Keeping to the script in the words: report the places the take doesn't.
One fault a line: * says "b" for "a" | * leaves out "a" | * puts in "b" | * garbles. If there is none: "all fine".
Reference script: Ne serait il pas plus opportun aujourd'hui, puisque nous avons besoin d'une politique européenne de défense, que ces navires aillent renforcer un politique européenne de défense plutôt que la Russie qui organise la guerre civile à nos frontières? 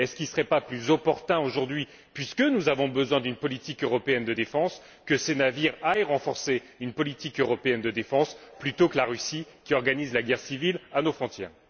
* says "une" for "un"